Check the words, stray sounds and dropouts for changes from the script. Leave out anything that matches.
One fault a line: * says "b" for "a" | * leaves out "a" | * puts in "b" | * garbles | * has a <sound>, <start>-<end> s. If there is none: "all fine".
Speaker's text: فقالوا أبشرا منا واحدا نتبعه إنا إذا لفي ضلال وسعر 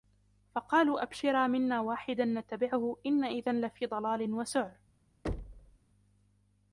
* has a thud, 5.2-5.8 s